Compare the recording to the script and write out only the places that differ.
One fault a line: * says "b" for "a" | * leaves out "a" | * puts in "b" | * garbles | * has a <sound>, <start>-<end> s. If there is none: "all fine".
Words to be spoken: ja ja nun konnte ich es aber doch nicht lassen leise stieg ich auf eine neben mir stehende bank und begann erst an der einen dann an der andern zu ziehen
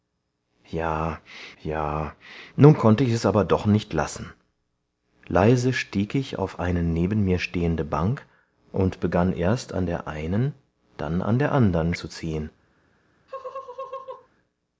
* has a laugh, 13.3-14.3 s